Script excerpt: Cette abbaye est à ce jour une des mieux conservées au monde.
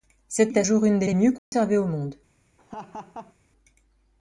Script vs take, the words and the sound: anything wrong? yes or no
yes